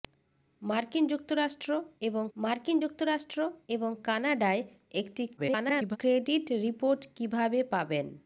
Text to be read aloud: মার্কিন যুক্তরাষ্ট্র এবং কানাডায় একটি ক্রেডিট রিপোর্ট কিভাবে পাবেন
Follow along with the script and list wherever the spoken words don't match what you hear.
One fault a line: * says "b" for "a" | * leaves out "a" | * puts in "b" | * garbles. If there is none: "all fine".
* puts in "মার্কিন যুক্তরাষ্ট্র এবং"
* garbles